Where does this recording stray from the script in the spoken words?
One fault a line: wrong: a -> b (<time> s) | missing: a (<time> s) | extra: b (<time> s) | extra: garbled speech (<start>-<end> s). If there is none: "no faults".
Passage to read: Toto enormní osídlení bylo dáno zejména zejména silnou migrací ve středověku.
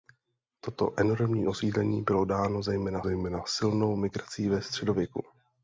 no faults